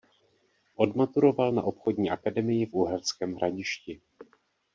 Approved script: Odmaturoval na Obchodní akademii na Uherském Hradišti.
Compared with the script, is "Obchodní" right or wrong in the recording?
right